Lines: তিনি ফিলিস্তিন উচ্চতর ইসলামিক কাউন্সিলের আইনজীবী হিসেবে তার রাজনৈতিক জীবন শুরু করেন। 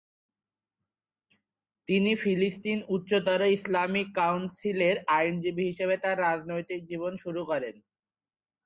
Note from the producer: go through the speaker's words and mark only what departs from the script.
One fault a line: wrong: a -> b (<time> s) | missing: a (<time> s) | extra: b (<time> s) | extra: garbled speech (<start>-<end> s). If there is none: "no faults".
no faults